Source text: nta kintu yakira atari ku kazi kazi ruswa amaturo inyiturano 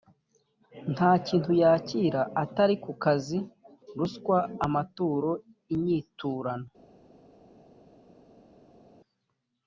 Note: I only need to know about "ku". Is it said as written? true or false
true